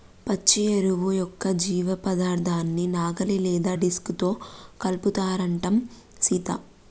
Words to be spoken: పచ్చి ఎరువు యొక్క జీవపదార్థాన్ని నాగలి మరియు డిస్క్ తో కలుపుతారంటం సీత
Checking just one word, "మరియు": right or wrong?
wrong